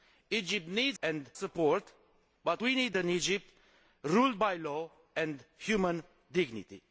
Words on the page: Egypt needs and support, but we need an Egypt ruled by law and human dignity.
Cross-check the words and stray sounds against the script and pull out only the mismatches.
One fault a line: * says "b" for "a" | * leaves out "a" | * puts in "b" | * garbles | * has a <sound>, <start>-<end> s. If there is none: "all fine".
all fine